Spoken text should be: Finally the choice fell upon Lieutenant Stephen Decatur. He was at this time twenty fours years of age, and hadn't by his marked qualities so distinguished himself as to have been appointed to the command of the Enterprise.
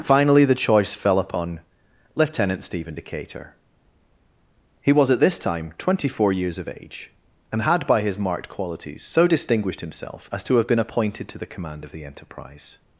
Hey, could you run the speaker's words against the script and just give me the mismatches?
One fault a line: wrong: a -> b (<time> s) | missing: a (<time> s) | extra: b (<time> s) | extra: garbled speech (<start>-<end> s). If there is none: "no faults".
wrong: fours -> four (6.1 s)
wrong: hadn't -> had (7.6 s)